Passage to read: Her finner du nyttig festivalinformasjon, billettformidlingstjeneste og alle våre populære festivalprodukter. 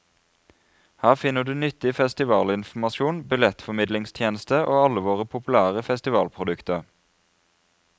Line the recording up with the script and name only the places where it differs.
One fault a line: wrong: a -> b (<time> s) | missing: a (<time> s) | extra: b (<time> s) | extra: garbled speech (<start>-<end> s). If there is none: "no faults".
no faults